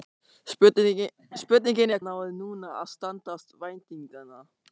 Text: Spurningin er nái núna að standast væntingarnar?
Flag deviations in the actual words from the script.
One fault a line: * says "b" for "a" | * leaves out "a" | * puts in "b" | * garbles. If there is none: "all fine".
all fine